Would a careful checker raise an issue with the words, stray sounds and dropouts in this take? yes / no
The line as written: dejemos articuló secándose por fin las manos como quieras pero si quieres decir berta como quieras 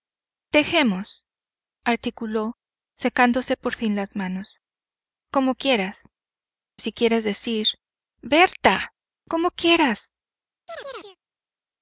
yes